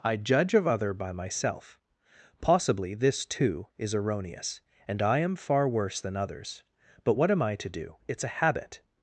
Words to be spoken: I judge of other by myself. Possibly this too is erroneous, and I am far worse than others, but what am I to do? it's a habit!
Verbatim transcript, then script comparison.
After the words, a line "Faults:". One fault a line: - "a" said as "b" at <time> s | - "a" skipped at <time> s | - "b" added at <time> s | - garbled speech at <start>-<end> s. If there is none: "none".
I judge of other by myself. Possibly this too is erroneous, and I am far worse than others, but what am I to do? it's a habit!
Faults:
none